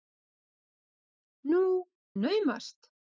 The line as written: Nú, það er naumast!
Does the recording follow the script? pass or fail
fail